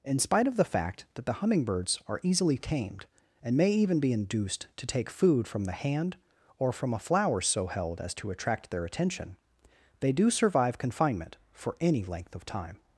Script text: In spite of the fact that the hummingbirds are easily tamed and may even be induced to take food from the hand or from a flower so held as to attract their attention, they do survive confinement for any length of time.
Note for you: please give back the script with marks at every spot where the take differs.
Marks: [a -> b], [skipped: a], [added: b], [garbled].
In spite of the fact that the hummingbirds are easily tamed and may even be induced to take food from the hand or from a flower so held as to attract their attention, they do survive confinement for any length of time.